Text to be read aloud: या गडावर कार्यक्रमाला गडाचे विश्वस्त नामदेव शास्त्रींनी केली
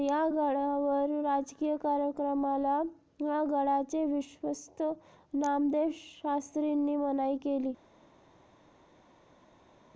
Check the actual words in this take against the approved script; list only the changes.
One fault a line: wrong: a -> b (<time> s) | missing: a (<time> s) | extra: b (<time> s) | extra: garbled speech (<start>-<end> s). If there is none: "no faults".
extra: राजकीय (1.2 s)
extra: मनाई (6.9 s)